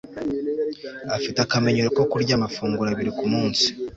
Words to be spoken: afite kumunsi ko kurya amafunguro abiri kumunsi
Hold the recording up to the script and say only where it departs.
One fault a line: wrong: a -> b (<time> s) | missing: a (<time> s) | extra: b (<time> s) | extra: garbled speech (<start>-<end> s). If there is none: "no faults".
wrong: kumunsi -> akamenyero (1.4 s)